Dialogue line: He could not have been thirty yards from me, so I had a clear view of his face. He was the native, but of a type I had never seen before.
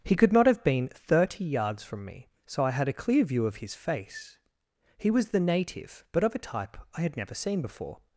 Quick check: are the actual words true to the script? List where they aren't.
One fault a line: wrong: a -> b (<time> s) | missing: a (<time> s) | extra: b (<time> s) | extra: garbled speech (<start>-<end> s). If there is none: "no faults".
no faults